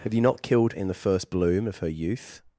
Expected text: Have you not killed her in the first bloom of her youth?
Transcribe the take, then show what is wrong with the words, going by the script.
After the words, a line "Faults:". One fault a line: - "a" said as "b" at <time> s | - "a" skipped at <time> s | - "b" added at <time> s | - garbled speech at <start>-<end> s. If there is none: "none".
Have you not killed in the first bloom of her youth?
Faults:
- "her" skipped at 0.7 s